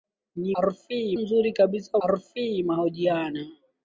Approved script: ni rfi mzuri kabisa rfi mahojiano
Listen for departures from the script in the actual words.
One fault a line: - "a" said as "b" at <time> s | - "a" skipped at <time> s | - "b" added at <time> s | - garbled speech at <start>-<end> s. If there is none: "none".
none